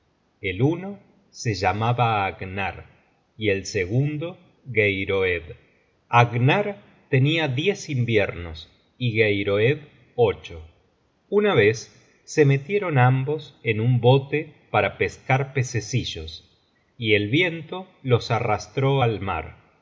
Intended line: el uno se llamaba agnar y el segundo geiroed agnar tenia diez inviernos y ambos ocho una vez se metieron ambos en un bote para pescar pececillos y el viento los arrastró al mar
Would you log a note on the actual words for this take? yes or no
yes